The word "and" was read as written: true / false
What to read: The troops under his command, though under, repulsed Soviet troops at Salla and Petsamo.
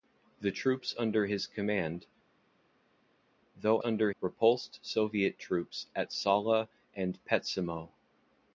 true